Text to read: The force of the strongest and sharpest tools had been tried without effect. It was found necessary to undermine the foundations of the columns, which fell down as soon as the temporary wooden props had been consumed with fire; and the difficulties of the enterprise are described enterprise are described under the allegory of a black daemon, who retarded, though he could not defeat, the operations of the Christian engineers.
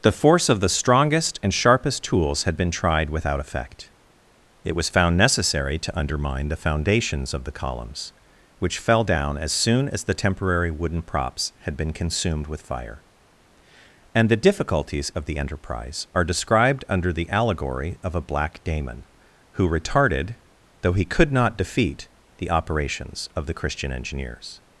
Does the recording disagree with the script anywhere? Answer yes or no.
yes